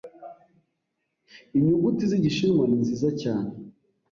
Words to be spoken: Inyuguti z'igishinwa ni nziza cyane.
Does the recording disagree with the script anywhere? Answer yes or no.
no